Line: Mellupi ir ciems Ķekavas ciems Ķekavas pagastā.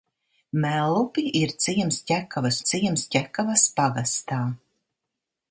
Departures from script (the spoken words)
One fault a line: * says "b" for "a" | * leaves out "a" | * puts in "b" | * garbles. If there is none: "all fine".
all fine